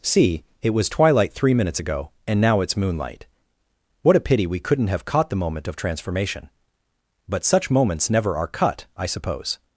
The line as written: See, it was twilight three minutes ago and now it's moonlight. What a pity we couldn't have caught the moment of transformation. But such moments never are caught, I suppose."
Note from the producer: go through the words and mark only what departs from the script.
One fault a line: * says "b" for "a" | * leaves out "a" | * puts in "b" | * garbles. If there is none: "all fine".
* says "cut" for "caught"